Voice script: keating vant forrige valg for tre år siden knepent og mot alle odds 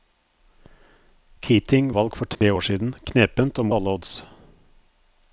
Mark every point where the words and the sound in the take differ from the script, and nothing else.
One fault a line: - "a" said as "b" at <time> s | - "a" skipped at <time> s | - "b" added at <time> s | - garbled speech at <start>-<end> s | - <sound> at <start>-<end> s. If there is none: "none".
- "vant forrige" skipped at 1.9 s
- dropout at 2.3-2.4 s
- "mot" skipped at 3.7 s